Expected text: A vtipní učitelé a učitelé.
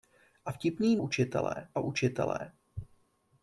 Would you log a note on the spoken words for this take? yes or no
no